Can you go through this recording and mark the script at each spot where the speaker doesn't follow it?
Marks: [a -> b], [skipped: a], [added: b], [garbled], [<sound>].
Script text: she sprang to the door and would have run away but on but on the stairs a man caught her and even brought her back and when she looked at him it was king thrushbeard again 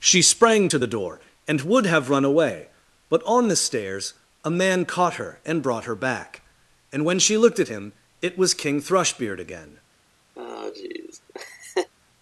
she sprang to the door and would have run away but on [skipped: but on] the stairs a man caught her and [skipped: even] brought her back and when she looked at him it was king thrushbeard again [laugh]